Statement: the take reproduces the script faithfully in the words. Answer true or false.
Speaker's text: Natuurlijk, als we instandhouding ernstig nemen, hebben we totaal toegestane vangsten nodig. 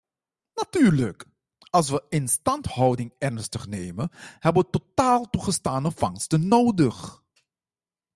true